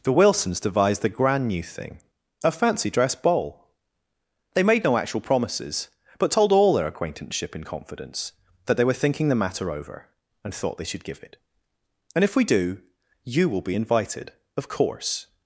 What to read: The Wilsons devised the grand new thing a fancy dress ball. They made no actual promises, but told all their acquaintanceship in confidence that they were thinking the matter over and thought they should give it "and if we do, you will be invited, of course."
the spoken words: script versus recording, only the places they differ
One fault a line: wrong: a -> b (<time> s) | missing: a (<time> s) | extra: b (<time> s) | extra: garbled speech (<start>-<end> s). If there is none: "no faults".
no faults